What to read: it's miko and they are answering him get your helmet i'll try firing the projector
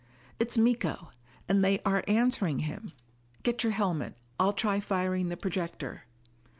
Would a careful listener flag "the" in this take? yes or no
no